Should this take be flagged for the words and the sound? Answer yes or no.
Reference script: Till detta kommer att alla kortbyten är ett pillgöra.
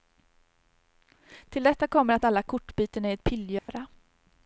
yes